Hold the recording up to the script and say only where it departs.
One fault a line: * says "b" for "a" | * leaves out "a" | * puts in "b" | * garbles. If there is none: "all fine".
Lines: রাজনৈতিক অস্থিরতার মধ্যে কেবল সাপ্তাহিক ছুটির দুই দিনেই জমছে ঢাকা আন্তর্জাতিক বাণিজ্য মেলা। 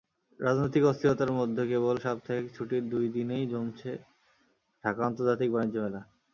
all fine